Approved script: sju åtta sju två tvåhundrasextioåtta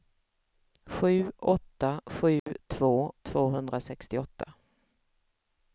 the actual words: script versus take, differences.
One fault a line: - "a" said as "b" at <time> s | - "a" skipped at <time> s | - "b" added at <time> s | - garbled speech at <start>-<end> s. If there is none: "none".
none